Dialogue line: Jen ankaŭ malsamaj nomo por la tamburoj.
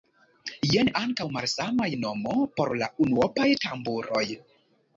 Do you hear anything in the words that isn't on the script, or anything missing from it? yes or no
yes